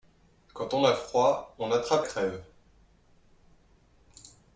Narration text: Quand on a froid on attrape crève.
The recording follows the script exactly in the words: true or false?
true